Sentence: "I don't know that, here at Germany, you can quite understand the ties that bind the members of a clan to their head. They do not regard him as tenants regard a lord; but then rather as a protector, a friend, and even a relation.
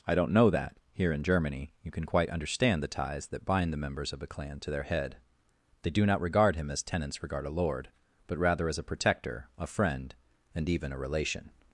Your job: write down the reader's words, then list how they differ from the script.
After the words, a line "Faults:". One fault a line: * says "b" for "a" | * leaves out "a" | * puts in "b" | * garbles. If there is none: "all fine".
"I don't know that, here in Germany, you can quite understand the ties that bind the members of a clan to their head. They do not regard him as tenants regard a lord; but rather as a protector, a friend, and even a relation.
Faults:
* says "in" for "at"
* leaves out "then"